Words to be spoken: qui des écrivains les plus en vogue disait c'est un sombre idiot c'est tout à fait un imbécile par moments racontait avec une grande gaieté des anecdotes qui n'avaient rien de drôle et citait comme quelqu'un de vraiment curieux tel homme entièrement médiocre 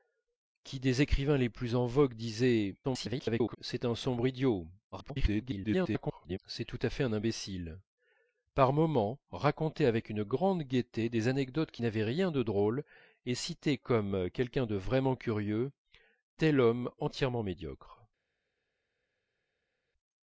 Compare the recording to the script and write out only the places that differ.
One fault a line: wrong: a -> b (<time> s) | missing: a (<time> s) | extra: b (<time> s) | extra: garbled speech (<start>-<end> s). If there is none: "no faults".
extra: garbled speech (2.8-3.6 s)
extra: garbled speech (4.9-6.4 s)